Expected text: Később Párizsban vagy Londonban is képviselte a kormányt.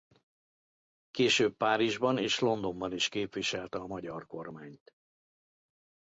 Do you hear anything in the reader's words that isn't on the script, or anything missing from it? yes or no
yes